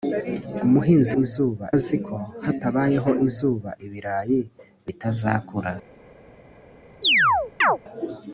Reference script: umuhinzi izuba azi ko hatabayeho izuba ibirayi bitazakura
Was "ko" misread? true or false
false